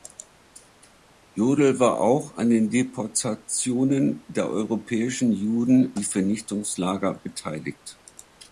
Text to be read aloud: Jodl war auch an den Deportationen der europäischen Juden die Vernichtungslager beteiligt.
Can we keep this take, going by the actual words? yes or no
yes